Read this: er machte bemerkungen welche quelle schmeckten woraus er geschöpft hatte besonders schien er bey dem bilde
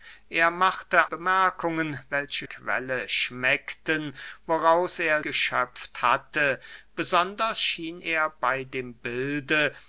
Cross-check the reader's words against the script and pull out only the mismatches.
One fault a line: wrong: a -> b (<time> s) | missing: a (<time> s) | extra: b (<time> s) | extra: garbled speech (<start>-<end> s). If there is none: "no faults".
no faults